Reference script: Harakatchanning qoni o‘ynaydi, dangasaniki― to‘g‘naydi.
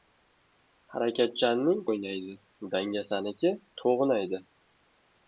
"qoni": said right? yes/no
no